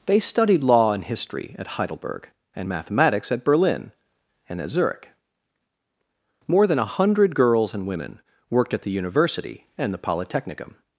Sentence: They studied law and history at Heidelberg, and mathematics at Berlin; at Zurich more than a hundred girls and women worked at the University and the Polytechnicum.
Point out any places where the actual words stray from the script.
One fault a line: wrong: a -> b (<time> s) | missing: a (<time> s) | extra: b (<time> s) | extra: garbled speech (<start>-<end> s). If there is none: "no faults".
extra: and (4.5 s)